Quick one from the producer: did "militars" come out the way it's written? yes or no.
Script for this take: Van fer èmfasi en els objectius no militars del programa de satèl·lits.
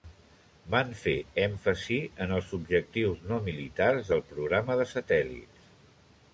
yes